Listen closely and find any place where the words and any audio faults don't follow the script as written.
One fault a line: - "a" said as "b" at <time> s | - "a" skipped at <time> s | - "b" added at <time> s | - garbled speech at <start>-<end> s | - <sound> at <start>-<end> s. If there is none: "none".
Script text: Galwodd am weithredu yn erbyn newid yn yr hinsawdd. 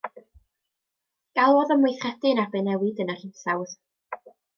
none